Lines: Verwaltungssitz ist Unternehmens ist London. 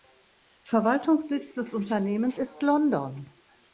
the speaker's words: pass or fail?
fail